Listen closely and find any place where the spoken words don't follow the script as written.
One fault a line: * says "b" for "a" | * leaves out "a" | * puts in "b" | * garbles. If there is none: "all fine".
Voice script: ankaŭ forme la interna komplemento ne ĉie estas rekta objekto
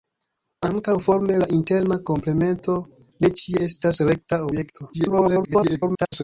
* garbles